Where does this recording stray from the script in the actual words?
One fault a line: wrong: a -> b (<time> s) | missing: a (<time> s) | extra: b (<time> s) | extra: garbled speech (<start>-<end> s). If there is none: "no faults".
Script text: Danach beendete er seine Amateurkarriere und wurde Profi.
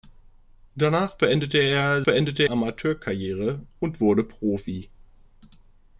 wrong: seine -> beendete (2.0 s)